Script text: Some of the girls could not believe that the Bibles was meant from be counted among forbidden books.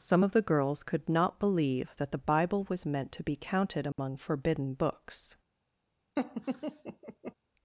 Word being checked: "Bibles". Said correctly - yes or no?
no